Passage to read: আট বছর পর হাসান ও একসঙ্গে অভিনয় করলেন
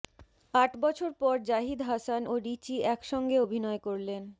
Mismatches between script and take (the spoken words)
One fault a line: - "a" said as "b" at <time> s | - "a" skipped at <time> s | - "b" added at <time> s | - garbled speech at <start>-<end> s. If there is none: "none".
- "জাহিদ" added at 1.5 s
- "রিচি" added at 2.4 s